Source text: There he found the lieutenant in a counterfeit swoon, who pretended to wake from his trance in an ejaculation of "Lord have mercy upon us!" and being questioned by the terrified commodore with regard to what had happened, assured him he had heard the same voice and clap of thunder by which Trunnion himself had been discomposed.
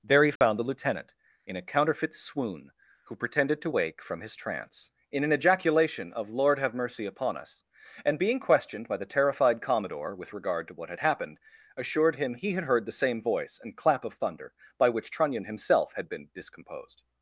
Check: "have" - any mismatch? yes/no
no